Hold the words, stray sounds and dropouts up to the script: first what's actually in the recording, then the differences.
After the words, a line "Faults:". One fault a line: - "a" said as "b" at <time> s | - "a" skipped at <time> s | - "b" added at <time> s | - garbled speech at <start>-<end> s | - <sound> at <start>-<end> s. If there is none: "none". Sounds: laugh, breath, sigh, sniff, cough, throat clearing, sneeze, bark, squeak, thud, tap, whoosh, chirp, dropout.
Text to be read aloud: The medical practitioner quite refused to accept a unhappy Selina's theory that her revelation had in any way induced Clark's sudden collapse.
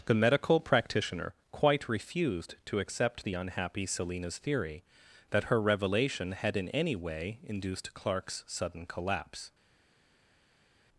The medical practitioner quite refused to accept the unhappy Selina's theory that her revelation had in any way induced Clark's sudden collapse.
Faults:
- "a" said as "the" at 3.2 s